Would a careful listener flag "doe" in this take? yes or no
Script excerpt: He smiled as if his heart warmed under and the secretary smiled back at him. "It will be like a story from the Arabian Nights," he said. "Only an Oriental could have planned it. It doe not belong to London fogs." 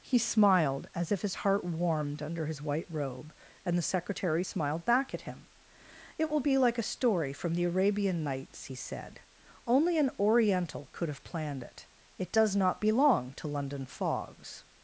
yes